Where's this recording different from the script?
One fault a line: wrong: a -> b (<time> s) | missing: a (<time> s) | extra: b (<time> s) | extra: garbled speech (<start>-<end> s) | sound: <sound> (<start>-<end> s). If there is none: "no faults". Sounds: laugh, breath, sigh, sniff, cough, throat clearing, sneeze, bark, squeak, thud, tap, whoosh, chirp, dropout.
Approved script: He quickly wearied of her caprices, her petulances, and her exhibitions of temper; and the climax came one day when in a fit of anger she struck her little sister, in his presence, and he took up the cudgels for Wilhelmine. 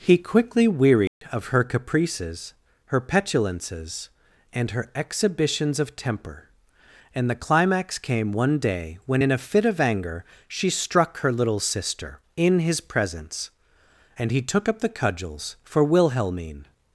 sound: dropout (1.1-1.2 s)